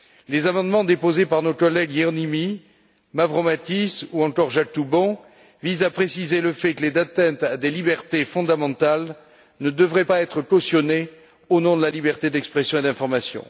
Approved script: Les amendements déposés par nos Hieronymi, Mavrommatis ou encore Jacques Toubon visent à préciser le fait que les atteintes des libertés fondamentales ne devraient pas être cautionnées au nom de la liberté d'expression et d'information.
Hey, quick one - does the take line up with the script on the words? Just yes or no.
no